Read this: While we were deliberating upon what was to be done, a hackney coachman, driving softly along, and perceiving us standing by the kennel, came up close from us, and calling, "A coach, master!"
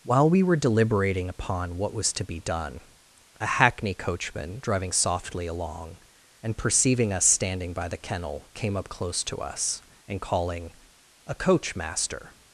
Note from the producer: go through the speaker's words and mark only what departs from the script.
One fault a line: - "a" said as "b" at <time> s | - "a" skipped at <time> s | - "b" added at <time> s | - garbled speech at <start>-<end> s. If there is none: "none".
- "from" said as "to" at 9.2 s